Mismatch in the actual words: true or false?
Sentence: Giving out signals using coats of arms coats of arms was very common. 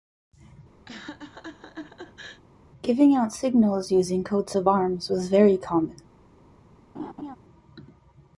true